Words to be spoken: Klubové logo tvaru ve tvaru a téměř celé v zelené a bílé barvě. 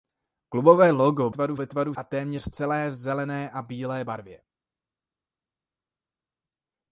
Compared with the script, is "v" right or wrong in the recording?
right